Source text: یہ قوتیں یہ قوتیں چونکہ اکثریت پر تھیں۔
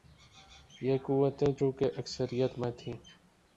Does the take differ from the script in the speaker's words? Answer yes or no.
yes